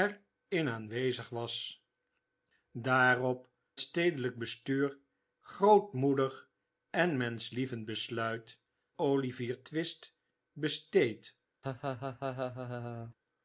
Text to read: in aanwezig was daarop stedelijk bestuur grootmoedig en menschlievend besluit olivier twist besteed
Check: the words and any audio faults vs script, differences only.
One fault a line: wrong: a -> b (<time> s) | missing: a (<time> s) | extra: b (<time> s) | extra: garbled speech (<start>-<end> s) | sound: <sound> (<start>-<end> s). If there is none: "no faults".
sound: laugh (11.6-13.1 s)